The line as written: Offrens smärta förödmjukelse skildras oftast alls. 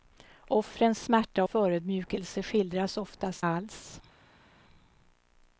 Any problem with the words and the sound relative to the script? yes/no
no